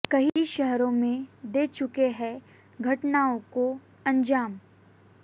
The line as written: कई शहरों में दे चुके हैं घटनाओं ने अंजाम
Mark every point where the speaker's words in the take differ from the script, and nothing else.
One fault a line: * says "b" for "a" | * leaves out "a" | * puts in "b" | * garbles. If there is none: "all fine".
* says "को" for "ने"